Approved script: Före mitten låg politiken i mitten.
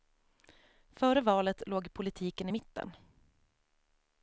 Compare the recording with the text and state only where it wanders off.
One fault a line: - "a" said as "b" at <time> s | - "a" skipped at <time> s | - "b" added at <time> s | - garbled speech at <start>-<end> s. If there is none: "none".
- "mitten" said as "valet" at 1.2 s